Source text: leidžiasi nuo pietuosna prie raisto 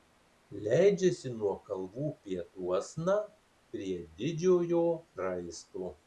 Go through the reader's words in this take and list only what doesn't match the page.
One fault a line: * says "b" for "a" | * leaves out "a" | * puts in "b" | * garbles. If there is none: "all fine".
* puts in "kalvų"
* puts in "didžiojo"